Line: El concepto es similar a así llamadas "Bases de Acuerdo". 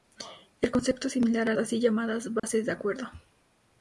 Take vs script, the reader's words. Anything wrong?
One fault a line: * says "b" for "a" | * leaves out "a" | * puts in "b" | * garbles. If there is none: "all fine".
all fine